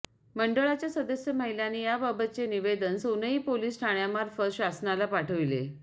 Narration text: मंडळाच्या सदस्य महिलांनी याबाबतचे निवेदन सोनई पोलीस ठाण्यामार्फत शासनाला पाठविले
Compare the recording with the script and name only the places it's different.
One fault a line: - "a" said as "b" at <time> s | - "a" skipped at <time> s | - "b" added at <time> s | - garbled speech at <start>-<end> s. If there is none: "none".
none